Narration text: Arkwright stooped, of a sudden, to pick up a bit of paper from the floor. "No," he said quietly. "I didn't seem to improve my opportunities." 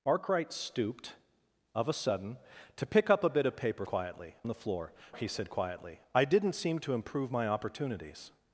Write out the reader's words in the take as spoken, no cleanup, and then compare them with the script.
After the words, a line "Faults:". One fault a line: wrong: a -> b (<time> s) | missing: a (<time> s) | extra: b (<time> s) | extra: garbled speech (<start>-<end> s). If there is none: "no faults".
Arkwright stooped, of a sudden, to pick up a bit of paper quietly the floor," "He said quietly. "I didn't seem to improve my opportunities."
Faults:
wrong: from -> quietly (3.9 s)
missing: No (4.9 s)